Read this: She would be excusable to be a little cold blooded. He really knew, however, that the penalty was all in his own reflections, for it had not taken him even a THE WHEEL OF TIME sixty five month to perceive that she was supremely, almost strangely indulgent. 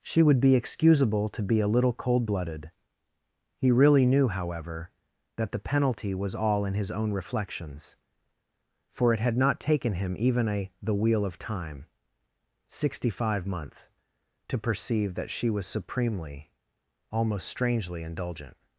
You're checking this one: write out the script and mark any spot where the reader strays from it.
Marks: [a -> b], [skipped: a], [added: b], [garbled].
She would be excusable to be a little cold blooded. He really knew, however, that the penalty was all in his own reflections, for it had not taken him even a THE WHEEL OF TIME sixty five [month -> months] to perceive that she was supremely, almost strangely indulgent.